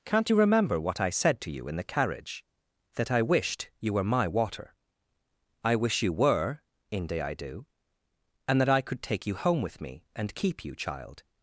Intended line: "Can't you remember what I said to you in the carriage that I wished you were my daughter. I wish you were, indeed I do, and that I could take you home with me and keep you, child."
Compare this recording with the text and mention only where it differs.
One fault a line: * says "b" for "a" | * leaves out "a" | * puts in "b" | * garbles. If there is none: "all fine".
* says "water" for "daughter"
* says "inde" for "indeed"